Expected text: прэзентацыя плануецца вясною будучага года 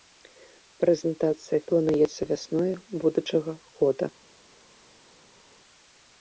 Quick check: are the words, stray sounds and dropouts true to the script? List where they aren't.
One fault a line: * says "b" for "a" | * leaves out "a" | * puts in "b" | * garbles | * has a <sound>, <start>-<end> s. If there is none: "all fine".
all fine